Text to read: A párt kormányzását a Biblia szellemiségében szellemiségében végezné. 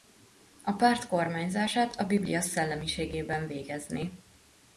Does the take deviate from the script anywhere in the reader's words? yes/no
yes